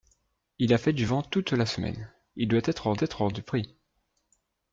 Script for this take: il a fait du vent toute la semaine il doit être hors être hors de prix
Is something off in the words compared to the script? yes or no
no